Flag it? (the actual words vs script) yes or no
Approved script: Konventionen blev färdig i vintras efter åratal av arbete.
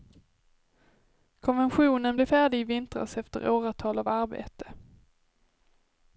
no